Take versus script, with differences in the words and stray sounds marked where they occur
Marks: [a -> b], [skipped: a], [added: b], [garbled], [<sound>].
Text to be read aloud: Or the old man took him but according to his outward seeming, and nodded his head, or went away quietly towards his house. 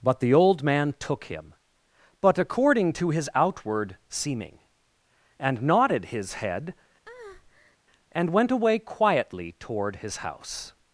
[Or -> But] the old man took him but according to his outward seeming, and nodded his head, [breath] [or -> and] went away quietly [towards -> toward] his house.